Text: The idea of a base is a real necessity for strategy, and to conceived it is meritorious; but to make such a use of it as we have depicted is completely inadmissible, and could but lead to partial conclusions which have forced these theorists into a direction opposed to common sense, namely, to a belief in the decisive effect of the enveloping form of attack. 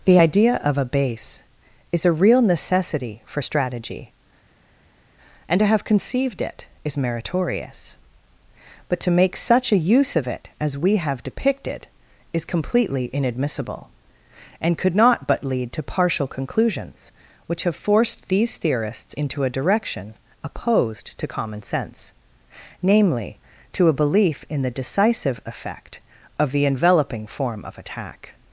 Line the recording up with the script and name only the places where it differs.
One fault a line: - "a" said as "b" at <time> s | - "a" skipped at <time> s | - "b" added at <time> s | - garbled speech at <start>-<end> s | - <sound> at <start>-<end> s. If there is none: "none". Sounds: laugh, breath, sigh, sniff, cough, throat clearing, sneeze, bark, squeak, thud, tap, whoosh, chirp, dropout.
- "have" added at 5.7 s
- "not" added at 15.0 s